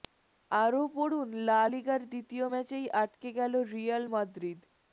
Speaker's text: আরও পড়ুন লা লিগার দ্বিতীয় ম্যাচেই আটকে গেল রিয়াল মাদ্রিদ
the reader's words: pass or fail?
pass